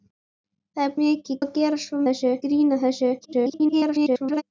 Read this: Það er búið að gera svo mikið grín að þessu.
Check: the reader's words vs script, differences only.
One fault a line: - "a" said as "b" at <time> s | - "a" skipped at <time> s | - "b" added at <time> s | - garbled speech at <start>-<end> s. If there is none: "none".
- "búið" said as "mikið" at 1.0 s
- "mikið" said as "þessu" at 2.1 s
- garbled speech at 3.2-4.4 s